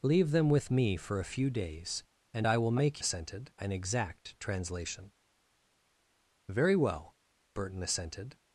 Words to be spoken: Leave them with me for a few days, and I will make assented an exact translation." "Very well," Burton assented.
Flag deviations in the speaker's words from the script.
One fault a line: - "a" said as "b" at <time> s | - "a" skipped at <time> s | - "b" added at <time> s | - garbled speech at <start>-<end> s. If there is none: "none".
none